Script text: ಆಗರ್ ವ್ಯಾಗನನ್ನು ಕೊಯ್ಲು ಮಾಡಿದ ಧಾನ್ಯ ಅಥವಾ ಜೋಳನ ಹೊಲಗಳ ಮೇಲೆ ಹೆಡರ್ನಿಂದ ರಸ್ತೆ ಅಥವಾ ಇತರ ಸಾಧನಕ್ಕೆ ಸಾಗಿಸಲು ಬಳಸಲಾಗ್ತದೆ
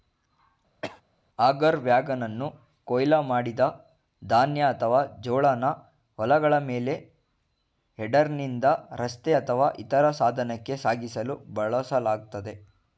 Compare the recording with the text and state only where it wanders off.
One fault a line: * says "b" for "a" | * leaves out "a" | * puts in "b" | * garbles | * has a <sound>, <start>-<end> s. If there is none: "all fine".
* has a cough, 0.8-1.0 s